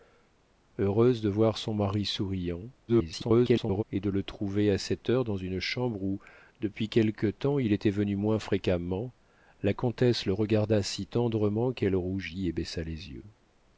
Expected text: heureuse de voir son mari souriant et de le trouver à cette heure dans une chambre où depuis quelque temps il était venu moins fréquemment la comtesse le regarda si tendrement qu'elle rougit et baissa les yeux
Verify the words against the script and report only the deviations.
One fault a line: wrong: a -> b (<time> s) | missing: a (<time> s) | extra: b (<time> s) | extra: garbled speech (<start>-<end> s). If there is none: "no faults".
extra: garbled speech (2.9-3.8 s)